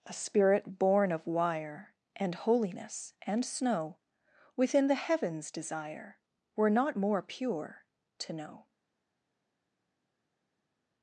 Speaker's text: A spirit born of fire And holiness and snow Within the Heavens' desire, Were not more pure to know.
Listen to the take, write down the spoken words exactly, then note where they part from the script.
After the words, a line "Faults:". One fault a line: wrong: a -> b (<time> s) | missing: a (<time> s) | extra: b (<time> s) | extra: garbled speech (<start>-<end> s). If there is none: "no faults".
A spirit born of wire And holiness and snow Within the Heavens' desire, Were not more pure to know.
Faults:
wrong: fire -> wire (1.3 s)